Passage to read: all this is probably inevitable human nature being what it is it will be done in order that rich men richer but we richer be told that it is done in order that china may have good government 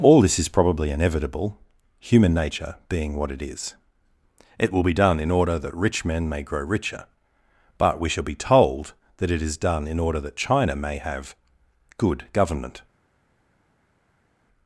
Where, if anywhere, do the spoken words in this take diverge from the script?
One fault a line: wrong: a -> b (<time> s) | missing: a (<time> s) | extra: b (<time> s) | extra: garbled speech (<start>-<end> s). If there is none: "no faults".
extra: may grow (6.3 s)
wrong: richer -> shall (8.1 s)